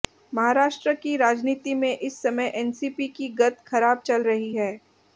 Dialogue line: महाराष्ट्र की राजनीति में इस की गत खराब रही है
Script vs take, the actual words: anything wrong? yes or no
yes